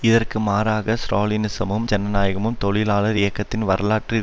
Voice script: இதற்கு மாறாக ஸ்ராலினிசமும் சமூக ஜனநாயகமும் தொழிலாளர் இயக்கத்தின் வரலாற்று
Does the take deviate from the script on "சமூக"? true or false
true